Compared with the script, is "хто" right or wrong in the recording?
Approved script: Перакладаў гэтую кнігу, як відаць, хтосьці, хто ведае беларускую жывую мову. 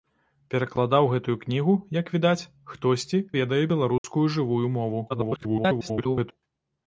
wrong